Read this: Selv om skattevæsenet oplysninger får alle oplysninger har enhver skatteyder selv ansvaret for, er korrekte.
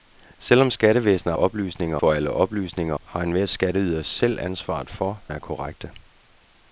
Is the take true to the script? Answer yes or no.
yes